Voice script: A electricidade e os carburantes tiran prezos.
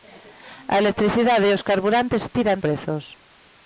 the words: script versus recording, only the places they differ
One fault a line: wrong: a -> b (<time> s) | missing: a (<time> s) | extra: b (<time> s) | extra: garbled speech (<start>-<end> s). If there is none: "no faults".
no faults